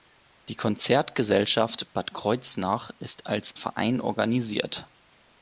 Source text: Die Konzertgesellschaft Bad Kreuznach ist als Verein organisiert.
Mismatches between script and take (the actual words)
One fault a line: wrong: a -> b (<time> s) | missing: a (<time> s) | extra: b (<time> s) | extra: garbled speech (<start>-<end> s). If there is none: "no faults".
no faults